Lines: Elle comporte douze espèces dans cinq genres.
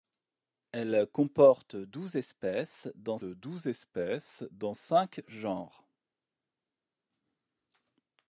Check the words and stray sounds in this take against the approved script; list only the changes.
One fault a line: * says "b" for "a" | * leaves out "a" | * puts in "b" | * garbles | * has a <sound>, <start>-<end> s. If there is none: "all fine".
* puts in "douze espèces dans"